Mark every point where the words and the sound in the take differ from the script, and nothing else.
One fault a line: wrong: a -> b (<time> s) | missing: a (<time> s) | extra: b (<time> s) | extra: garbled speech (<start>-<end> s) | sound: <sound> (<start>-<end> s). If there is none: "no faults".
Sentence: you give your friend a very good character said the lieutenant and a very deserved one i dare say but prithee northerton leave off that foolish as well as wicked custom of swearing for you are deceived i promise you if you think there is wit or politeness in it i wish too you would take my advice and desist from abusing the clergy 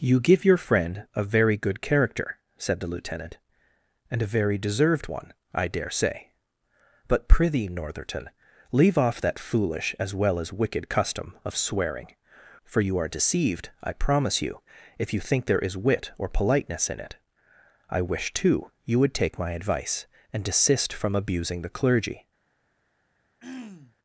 sound: throat clearing (23.4-23.9 s)